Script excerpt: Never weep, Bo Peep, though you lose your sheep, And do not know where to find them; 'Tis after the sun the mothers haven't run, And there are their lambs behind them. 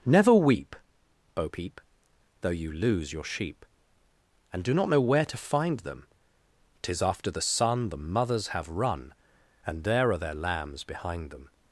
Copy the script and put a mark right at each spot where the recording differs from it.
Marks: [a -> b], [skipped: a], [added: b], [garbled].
Never weep, Bo Peep, though you lose your sheep, And do not know where to find them; 'Tis after the sun the mothers [haven't -> have] run, And there are their lambs behind them.